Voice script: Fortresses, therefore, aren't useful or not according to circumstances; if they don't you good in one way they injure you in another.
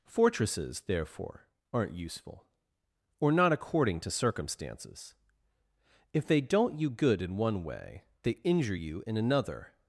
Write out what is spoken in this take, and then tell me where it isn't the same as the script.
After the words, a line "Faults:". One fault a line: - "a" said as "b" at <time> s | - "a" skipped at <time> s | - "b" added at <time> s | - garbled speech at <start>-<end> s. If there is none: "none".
Fortresses, therefore, aren't useful or not according to circumstances; if they don't you good in one way they injure you in another.
Faults:
none